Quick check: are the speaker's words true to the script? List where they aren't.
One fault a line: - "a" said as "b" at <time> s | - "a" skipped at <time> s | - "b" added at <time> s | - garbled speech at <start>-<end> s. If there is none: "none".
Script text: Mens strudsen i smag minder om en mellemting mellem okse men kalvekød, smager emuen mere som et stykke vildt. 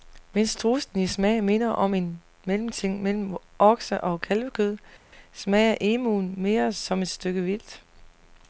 - "men" said as "og" at 4.0 s